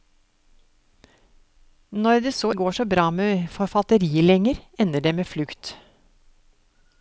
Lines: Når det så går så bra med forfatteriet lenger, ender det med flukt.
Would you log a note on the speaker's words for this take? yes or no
no